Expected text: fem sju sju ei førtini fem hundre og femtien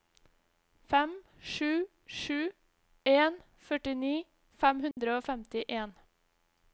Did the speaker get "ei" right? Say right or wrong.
wrong